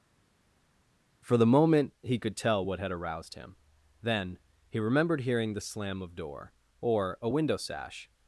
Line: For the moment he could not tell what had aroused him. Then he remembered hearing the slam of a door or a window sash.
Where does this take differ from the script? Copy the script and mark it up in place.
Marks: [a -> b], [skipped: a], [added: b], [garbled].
For the moment he could [skipped: not] tell what had aroused him. Then he remembered hearing the slam of [skipped: a] door or a window sash.